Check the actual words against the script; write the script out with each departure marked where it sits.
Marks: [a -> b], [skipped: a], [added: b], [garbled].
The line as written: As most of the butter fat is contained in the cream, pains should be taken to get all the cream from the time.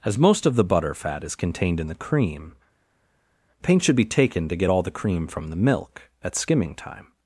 As most of the butter fat is contained in the cream, pains should be taken to get all the cream from the [added: milk at skimming] time.